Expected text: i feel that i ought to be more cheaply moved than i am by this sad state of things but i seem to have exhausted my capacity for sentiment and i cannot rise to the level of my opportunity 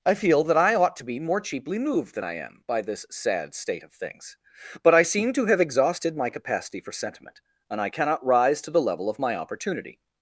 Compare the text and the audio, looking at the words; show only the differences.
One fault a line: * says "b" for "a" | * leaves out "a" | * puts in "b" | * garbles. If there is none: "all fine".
all fine